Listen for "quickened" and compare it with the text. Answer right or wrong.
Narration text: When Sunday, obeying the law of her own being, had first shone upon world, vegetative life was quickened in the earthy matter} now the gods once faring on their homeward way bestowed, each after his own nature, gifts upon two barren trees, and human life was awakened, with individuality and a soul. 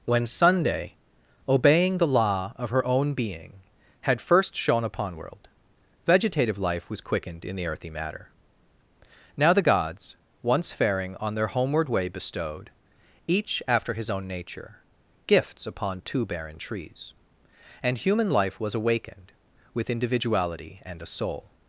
right